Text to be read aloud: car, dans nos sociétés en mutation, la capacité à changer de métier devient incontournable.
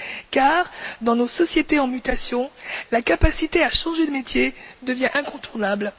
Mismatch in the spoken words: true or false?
false